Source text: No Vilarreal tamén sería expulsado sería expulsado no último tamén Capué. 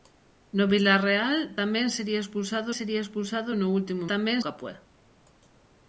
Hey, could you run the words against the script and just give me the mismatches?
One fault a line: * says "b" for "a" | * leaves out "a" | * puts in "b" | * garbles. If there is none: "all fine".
all fine